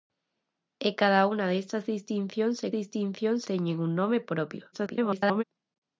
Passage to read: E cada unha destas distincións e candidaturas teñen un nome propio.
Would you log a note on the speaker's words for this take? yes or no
yes